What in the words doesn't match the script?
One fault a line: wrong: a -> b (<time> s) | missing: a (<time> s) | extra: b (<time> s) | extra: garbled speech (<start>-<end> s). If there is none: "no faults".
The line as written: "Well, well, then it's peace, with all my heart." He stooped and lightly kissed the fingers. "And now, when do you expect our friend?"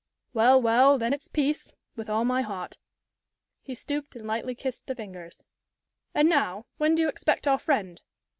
no faults